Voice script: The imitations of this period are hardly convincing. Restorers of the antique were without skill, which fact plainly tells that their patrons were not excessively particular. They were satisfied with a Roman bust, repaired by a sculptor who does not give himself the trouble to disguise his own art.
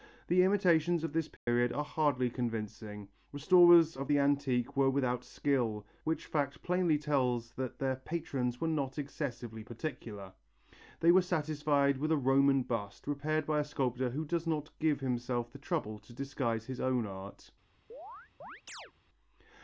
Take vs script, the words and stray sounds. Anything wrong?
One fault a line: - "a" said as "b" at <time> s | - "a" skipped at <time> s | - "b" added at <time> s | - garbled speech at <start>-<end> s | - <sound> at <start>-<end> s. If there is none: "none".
- dropout at 1.4-1.5 s
- chirp at 17.9-18.9 s